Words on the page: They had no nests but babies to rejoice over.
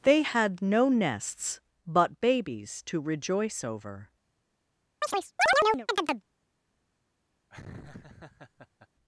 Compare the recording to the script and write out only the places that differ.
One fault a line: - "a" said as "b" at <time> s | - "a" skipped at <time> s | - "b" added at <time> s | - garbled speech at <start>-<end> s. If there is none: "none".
none